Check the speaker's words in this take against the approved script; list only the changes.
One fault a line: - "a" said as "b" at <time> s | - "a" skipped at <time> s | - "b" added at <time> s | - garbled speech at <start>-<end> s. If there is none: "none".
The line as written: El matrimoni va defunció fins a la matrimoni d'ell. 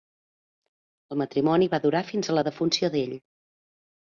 - "defunció" said as "durar" at 1.9 s
- "matrimoni" said as "defunció" at 2.5 s